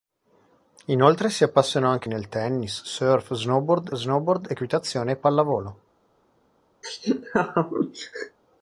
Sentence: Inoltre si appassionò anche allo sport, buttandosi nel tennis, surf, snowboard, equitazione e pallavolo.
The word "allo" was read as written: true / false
false